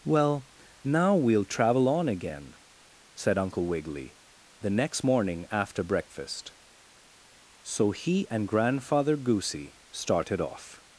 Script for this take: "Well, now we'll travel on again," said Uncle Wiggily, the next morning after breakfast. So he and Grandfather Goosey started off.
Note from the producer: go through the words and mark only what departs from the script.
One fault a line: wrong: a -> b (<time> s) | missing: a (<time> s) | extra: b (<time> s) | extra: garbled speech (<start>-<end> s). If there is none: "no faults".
no faults